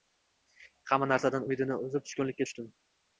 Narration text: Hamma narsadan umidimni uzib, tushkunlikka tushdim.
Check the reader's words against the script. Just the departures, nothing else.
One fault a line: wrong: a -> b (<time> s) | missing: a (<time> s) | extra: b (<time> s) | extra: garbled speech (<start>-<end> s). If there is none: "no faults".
no faults